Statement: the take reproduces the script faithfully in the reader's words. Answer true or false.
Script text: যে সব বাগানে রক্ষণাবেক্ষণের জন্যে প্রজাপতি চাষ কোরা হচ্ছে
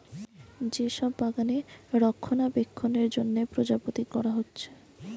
false